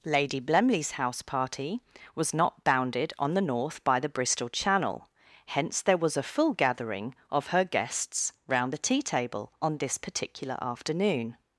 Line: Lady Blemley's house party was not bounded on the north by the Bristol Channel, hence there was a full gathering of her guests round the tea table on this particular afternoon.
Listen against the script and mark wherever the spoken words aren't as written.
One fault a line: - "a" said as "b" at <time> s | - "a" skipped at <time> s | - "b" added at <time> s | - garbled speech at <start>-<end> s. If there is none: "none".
none